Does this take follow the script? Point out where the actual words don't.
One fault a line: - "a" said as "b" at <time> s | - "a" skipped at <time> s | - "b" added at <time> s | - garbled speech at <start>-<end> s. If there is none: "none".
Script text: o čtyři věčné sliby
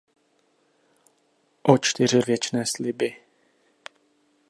none